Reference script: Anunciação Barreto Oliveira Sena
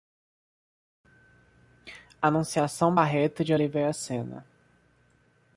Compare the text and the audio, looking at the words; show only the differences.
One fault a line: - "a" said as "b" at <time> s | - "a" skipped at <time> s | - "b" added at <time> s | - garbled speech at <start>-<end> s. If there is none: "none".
- "de" added at 3.4 s